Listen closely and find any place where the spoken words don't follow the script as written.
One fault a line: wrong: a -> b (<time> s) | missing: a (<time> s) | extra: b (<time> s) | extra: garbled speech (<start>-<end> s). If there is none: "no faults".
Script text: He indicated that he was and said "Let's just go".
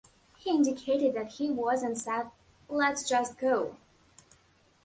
no faults